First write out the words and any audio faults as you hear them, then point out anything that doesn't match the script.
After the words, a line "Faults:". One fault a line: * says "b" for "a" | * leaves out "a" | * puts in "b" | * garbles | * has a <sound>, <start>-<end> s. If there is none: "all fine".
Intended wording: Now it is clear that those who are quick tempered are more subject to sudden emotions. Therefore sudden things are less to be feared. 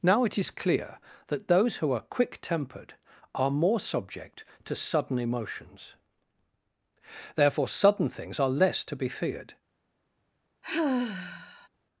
Now it is clear that those who are quick tempered are more subject to sudden emotions. Therefore sudden things are less to be feared.
Faults:
* has a sigh, 10.6-11.7 s